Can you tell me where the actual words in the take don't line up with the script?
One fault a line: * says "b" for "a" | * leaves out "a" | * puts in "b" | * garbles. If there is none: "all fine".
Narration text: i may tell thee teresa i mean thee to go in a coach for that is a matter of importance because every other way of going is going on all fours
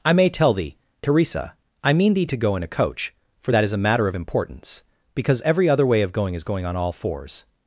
all fine